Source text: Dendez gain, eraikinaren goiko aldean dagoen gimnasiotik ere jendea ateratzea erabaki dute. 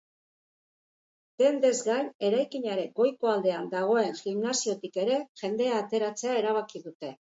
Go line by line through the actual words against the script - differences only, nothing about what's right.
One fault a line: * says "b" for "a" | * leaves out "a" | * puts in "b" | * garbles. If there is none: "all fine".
all fine